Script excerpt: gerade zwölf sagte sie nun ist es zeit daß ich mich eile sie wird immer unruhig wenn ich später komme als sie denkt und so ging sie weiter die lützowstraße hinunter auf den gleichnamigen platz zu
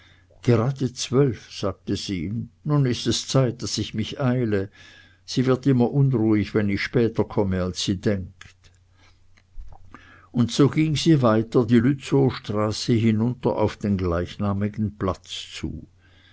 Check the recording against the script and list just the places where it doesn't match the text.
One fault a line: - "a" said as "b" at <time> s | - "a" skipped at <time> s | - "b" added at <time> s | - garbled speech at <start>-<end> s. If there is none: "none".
none